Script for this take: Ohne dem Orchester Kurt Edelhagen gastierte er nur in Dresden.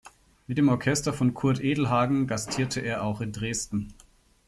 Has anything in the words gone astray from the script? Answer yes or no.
yes